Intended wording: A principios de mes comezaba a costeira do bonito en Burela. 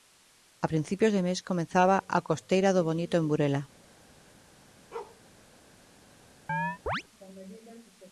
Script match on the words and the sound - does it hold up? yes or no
no